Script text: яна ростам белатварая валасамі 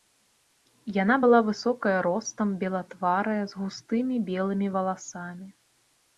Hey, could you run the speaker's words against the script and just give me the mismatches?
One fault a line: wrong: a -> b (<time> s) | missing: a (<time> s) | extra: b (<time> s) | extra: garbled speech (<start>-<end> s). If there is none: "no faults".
extra: была высокая (1.2 s)
extra: з густымі белымі (3.5 s)